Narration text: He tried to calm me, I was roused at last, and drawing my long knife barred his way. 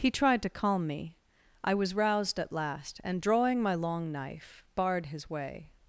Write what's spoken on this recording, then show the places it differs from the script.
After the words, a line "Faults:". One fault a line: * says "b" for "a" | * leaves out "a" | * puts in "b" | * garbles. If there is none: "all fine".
He tried to calm me, I was roused at last, and drawing my long knife barred his way.
Faults:
all fine